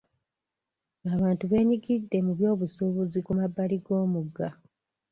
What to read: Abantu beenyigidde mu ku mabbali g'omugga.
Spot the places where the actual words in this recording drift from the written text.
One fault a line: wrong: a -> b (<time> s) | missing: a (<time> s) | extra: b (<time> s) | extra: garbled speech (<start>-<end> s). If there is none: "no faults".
extra: byobusuubuzi (2.4 s)